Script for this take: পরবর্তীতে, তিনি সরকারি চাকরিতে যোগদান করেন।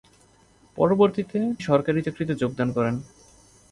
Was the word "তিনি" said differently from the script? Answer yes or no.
yes